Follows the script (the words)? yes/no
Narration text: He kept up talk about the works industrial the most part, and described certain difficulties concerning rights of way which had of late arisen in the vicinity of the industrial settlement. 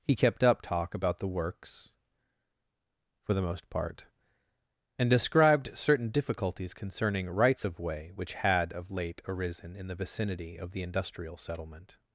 no